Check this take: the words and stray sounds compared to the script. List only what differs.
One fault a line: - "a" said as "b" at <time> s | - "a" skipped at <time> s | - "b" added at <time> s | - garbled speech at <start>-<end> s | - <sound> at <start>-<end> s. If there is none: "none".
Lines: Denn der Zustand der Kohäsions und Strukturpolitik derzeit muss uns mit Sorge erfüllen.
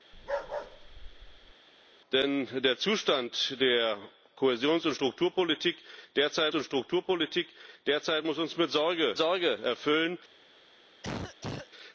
- bark at 0.1-1.5 s
- "und Strukturpolitik derzeit" added at 6.5 s
- "Sorge" added at 9.2 s
- cough at 11.0-11.7 s